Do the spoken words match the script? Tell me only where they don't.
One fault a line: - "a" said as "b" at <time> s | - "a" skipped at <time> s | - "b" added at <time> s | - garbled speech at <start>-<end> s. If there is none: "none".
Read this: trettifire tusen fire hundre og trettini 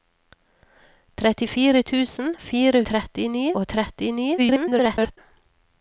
- "hundre" said as "trettini" at 2.9 s
- garbled speech at 4.4-5.2 s